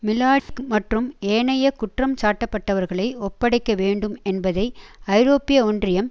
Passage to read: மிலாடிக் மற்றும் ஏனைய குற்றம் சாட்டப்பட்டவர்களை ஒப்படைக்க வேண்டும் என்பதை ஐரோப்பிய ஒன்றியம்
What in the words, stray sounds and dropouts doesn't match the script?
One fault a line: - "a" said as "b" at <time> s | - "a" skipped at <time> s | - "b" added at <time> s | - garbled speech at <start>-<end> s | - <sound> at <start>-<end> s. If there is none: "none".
- dropout at 0.4-0.5 s